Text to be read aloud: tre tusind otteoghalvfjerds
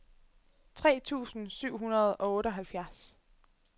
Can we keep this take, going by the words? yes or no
no